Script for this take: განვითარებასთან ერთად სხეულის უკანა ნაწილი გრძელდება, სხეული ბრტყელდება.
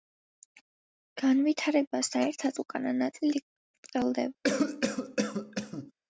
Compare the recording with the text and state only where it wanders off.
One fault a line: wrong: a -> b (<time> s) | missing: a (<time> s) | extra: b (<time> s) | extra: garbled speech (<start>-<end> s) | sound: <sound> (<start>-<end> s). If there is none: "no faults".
missing: სხეულის (2.6 s)
missing: გრძელდება სხეული (3.4 s)
sound: cough (4.4-5.9 s)